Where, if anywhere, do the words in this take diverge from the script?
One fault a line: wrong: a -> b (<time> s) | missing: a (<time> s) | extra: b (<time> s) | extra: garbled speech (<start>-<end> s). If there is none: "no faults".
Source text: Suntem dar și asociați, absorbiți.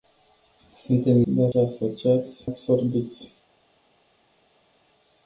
no faults